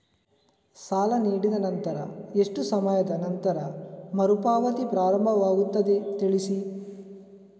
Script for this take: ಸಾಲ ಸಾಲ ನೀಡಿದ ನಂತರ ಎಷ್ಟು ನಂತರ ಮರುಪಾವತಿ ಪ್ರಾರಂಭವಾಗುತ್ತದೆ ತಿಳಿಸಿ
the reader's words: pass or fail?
fail